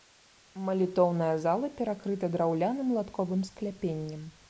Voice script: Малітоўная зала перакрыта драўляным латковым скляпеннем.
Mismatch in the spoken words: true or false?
false